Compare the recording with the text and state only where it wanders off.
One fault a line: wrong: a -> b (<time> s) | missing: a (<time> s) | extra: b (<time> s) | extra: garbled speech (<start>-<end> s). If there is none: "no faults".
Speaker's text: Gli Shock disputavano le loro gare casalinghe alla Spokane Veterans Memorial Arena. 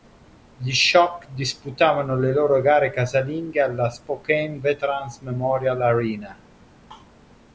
no faults